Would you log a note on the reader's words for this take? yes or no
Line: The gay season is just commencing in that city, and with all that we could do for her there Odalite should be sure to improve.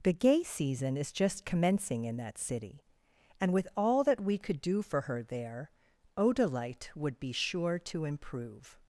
yes